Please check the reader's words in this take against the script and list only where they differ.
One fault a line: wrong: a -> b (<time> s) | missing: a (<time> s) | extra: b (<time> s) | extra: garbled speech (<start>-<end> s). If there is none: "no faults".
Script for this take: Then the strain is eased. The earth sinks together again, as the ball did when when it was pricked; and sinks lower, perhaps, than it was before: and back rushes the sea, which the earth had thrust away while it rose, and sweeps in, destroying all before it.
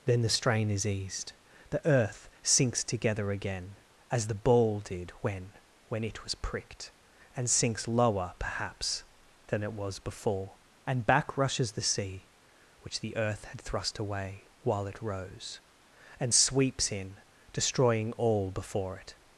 no faults